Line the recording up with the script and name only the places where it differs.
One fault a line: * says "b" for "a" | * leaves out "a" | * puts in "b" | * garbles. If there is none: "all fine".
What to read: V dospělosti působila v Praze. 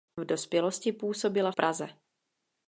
* leaves out "v"